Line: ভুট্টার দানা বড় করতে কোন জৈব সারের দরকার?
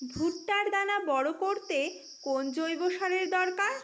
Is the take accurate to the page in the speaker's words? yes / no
yes